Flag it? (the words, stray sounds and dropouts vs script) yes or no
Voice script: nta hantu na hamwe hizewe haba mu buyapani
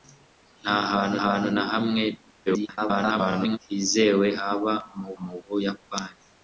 yes